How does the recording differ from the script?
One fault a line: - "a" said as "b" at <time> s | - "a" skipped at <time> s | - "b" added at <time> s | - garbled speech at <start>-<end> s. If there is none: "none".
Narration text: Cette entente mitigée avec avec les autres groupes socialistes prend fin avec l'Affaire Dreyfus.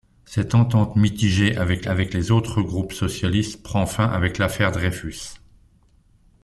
none